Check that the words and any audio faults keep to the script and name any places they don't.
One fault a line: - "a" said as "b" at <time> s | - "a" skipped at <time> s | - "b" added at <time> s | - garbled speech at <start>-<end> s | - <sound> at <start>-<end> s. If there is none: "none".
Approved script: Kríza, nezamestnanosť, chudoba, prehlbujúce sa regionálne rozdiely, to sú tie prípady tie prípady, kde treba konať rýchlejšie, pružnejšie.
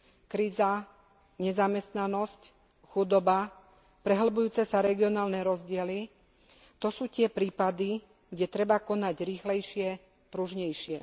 - "tie prípady" skipped at 8.0 s